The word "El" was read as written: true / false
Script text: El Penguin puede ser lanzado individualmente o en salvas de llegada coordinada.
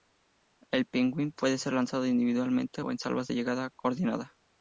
true